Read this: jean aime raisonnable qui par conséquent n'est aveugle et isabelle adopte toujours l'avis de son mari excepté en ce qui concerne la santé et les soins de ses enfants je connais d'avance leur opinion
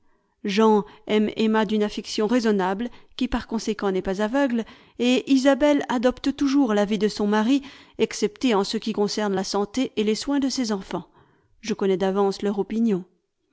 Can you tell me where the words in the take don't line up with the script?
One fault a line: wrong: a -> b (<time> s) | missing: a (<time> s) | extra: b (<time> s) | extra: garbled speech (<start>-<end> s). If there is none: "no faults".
extra: emma d'une affection (1.4 s)
extra: pas (4.0 s)